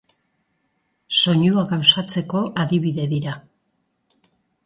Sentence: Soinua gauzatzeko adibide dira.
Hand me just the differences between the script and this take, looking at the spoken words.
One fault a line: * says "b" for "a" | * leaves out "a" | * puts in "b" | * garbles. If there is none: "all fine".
all fine